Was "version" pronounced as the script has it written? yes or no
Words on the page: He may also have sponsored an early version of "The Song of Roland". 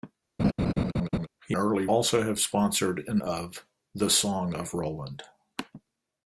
no